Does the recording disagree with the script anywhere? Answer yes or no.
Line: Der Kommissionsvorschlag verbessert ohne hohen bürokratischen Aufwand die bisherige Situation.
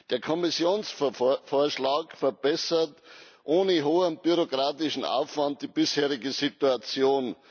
no